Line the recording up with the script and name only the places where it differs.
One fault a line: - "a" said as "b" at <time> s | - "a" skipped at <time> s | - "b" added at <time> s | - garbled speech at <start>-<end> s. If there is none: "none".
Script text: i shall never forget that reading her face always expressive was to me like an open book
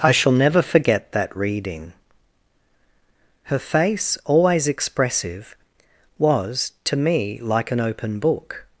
none